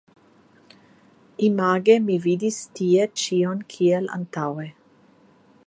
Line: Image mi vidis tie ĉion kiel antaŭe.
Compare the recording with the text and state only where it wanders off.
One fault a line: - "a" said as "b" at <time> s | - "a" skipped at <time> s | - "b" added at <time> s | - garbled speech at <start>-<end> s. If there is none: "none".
none